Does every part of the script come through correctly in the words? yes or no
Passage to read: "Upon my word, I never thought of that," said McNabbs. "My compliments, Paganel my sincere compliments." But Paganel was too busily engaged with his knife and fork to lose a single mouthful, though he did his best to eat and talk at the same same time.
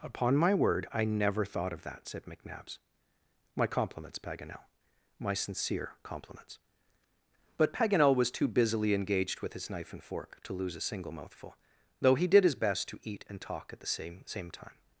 yes